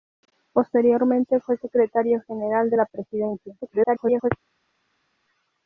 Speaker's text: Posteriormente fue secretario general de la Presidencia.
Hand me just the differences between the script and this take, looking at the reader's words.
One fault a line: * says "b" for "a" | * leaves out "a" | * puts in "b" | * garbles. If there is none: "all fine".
* garbles